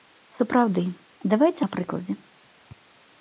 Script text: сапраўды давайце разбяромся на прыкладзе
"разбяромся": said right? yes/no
no